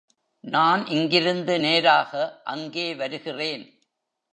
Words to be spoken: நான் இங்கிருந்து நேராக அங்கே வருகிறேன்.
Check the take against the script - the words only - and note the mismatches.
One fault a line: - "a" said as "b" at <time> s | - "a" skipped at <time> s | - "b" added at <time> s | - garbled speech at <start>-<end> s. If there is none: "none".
none